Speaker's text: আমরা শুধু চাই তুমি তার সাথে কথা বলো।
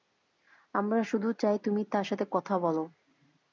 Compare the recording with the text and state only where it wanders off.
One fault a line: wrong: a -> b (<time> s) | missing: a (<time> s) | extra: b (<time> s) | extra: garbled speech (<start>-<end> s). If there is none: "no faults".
no faults